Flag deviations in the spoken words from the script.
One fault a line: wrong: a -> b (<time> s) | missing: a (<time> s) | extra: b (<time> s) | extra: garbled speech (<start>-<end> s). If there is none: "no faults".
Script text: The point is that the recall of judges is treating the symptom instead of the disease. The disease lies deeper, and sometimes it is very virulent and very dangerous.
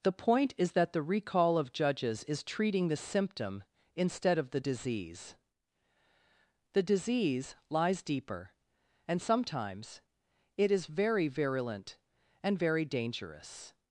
no faults